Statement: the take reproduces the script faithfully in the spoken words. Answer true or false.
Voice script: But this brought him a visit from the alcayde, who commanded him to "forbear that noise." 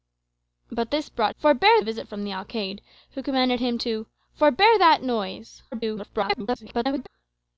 false